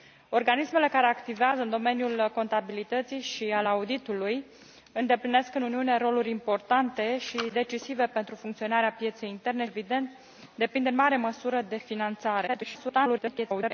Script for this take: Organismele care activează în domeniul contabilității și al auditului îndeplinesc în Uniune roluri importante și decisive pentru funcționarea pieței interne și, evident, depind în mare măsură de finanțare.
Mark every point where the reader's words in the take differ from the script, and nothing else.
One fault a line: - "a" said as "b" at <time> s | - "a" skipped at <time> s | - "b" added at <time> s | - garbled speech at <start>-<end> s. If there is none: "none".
- "și" skipped at 9.7 s
- garbled speech at 12.5-13.7 s